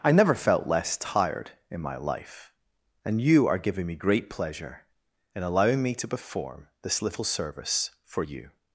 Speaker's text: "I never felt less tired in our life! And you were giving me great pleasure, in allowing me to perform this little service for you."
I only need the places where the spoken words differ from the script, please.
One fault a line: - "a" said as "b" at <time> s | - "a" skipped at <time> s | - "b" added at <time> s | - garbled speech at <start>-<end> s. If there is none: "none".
- "our" said as "my" at 1.8 s
- "were" said as "are" at 3.5 s